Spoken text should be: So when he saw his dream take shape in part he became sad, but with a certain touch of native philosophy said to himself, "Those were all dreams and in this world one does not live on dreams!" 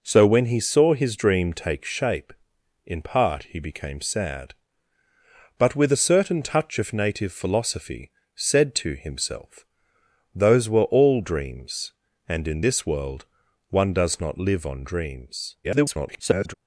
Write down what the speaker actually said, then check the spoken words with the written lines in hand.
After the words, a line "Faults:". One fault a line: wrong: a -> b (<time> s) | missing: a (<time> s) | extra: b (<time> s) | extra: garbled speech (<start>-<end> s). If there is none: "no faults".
So when he saw his dream take shape in part he became sad, but with a certain touch of native philosophy said to himself, "Those were all dreams and in this world one does not live on dreams!" [garbled]
Faults:
extra: garbled speech (15.6-16.5 s)